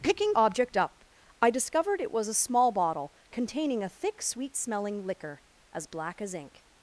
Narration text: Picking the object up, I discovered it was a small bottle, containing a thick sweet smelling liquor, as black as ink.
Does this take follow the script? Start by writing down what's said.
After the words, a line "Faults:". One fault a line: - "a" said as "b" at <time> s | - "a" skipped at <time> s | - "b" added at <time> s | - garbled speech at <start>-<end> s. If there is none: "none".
Picking object up, I discovered it was a small bottle, containing a thick sweet smelling liquor, as black as ink.
Faults:
- "the" skipped at 0.3 s